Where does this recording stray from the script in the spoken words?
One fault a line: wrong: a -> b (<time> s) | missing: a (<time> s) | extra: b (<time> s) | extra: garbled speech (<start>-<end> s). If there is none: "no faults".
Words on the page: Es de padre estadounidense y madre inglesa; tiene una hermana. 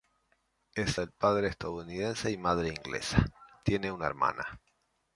no faults